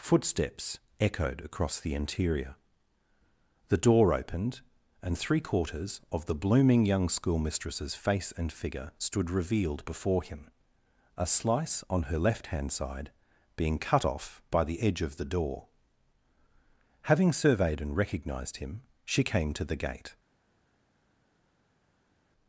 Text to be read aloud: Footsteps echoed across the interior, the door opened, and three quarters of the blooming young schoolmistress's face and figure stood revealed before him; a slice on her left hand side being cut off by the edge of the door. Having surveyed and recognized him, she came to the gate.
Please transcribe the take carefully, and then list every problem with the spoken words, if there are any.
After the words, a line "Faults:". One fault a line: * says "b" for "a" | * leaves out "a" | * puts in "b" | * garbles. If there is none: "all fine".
Footsteps echoed across the interior, the door opened, and three quarters of the blooming young schoolmistress's face and figure stood revealed before him; a slice on her left hand side being cut off by the edge of the door. Having surveyed and recognized him, she came to the gate.
Faults:
all fine